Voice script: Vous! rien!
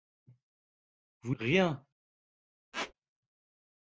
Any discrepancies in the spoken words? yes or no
no